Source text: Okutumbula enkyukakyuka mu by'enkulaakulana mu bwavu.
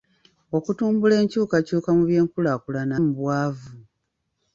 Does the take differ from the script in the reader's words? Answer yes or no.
no